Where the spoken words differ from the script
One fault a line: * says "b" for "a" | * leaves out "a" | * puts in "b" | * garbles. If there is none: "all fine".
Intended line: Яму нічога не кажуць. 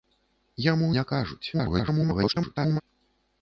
* leaves out "нічога"
* garbles